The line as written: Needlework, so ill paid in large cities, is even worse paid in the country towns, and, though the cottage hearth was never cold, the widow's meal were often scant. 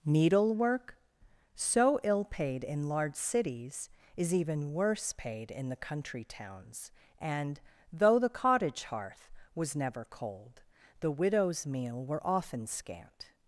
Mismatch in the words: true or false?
false